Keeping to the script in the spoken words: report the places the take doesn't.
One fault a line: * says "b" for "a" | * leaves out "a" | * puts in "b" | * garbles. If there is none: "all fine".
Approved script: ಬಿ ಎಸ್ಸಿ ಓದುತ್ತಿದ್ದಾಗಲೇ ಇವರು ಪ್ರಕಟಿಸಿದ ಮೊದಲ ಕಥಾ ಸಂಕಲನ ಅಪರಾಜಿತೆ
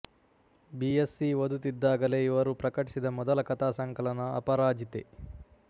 all fine